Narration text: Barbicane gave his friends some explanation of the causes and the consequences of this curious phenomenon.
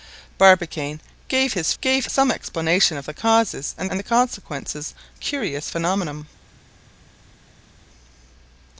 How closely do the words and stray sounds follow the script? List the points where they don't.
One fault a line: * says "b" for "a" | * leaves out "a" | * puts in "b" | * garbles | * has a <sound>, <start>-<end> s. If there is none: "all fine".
* says "gave" for "friends"
* puts in "and"
* leaves out "of this"